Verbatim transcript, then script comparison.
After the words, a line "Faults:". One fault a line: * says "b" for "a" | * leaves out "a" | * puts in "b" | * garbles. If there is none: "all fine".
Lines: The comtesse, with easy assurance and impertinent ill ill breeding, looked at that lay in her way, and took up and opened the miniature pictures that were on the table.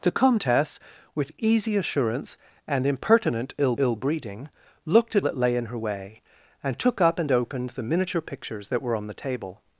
The comtesse, with easy assurance and impertinent ill ill breeding, looked at that lay in her way, and took up and opened the miniature pictures that were on the table.
Faults:
all fine